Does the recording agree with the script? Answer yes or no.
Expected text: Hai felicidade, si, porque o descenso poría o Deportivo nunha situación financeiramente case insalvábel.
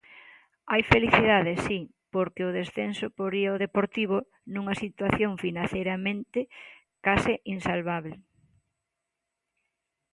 yes